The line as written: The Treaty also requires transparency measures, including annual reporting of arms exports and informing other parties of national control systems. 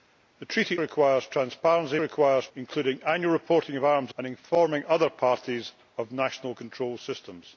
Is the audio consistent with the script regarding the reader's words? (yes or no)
no